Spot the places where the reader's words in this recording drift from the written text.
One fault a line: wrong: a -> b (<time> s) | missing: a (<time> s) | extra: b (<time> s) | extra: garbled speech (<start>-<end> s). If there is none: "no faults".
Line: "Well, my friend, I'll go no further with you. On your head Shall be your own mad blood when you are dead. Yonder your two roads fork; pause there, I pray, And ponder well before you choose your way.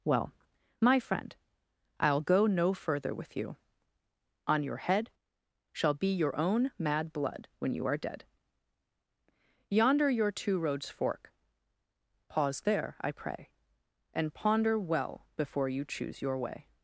no faults